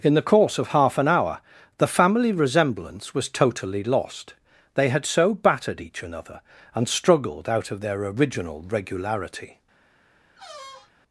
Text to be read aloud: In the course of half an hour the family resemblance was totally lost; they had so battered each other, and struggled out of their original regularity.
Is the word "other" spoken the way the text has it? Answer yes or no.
no